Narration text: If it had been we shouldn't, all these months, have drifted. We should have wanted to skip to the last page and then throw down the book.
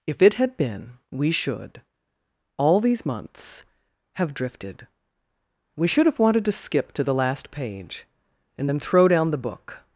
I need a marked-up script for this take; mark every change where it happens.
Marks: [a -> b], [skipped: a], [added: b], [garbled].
If it had been we [shouldn't, -> should] all these months, have drifted. We should have wanted to skip to the last page and then throw down the book.